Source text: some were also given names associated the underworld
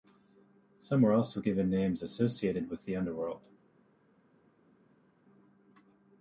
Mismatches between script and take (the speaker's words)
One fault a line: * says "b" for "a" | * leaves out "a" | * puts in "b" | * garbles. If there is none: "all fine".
* puts in "with"